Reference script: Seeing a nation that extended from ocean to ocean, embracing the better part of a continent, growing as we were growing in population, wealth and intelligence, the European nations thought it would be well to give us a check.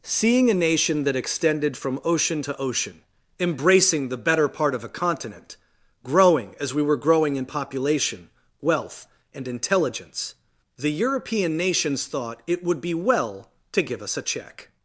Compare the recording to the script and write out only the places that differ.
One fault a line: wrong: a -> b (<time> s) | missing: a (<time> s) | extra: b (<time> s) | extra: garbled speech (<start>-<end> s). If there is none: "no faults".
no faults